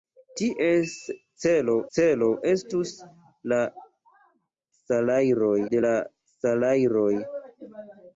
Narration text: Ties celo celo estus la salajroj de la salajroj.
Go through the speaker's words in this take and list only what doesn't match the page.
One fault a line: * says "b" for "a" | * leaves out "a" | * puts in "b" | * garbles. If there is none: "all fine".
all fine